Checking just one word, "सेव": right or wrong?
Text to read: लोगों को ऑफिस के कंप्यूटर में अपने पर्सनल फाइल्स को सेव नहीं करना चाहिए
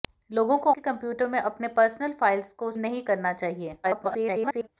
wrong